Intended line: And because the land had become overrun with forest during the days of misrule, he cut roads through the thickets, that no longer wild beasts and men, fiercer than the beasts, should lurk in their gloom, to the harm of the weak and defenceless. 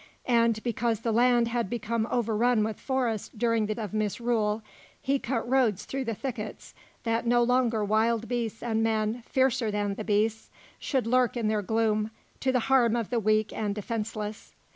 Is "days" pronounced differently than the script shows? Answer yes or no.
yes